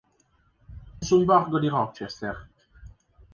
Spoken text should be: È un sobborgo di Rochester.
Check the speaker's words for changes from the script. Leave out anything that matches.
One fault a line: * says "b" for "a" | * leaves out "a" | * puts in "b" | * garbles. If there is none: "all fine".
* leaves out "un"